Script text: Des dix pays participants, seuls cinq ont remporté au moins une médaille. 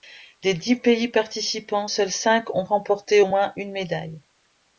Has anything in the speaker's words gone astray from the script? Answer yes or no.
no